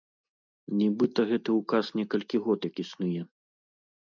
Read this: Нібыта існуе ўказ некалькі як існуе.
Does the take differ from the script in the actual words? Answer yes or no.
yes